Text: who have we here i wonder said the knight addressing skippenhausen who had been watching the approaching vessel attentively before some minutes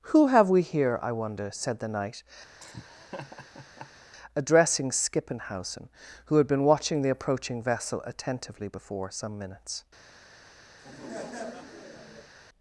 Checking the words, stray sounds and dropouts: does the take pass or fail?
fail